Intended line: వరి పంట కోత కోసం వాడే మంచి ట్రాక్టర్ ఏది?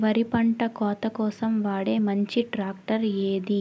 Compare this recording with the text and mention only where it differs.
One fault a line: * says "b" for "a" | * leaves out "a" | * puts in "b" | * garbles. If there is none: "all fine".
all fine